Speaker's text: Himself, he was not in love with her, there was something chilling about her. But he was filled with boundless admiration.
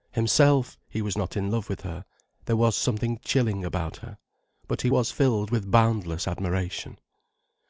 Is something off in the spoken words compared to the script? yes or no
no